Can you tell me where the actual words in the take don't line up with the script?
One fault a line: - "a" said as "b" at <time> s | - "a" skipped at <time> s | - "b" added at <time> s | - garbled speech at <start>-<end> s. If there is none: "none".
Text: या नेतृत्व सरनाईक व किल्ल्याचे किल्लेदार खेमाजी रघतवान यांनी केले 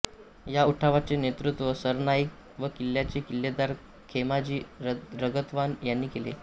- "उठावाचे" added at 0.6 s